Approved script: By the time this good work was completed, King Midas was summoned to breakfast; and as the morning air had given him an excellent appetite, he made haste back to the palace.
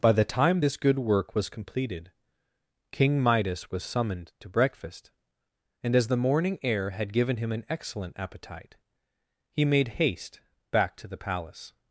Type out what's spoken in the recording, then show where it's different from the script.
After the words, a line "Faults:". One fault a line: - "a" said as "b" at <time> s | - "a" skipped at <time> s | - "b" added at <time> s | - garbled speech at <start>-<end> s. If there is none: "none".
By the time this good work was completed, King Midas was summoned to breakfast; and as the morning air had given him an excellent appetite, he made haste back to the palace.
Faults:
none